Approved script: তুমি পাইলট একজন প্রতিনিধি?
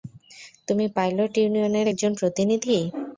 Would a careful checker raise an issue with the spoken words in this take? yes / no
yes